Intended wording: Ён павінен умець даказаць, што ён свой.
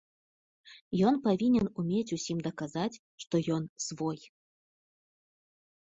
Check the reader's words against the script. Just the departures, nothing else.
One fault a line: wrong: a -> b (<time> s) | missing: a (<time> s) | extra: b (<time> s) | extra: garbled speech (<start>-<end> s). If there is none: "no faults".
extra: усім (2.2 s)